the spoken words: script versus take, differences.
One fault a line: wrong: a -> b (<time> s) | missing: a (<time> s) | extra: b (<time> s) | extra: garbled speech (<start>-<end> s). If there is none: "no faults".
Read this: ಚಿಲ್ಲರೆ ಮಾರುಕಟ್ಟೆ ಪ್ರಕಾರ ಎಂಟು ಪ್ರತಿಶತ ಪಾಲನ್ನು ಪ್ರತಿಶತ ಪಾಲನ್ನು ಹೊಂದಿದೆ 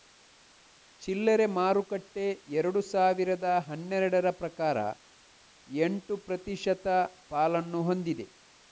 extra: ಎರಡು ಸಾವಿರದ ಹನ್ನೆರಡರ (2.6 s)
missing: ಪ್ರತಿಶತ ಪಾಲನ್ನು (7.8 s)